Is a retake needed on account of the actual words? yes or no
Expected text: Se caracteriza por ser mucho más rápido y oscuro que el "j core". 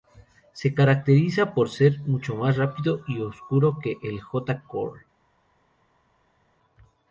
no